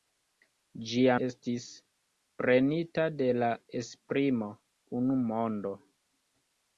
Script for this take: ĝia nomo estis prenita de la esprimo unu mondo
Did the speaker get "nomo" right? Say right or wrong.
wrong